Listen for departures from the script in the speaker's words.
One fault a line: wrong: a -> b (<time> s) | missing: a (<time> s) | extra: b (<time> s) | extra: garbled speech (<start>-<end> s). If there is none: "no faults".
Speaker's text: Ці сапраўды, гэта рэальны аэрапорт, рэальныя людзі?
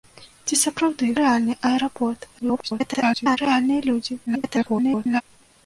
missing: гэта (1.1 s)
extra: garbled speech (2.4-3.4 s)
extra: garbled speech (4.3-5.2 s)